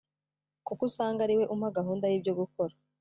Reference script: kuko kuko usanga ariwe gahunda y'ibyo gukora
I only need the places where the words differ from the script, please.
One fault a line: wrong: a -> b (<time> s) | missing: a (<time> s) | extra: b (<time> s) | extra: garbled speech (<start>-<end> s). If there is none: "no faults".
missing: kuko (0.8 s)
extra: umpa (1.5 s)